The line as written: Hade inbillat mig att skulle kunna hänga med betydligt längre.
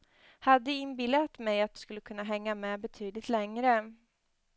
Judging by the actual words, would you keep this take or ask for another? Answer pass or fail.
pass